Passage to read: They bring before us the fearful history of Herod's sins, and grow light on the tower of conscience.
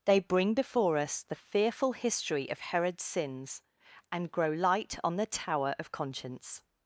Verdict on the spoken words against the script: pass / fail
pass